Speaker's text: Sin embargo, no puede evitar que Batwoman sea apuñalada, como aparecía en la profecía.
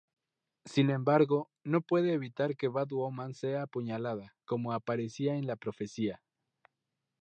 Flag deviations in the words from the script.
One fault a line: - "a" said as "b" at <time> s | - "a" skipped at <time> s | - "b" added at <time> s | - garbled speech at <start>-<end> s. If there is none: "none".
none